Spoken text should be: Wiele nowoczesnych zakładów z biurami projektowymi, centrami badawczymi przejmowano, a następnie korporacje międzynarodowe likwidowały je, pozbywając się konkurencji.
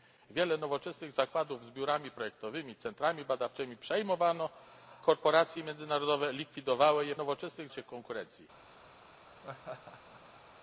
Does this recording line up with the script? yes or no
no